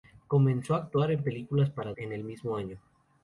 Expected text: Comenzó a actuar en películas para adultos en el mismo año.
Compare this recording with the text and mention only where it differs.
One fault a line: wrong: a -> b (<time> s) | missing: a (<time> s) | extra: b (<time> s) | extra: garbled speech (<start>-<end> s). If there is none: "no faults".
missing: adultos (1.9 s)